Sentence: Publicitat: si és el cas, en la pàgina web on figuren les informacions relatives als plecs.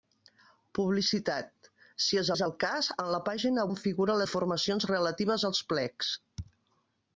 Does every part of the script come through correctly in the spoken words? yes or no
no